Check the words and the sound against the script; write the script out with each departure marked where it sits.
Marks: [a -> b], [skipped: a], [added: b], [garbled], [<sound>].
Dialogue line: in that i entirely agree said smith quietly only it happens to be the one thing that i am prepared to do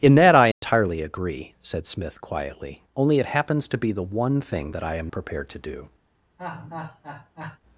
in that i entirely [dropout] agree said smith quietly only it happens to be the one thing that i am prepared to do [laugh]